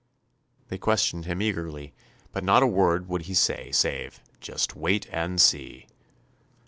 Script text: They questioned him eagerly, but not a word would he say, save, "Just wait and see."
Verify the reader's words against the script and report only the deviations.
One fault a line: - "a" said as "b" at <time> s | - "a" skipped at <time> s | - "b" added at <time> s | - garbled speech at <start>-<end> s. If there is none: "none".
none